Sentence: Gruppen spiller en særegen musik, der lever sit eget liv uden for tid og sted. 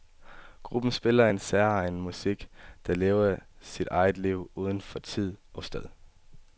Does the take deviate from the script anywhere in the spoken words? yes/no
no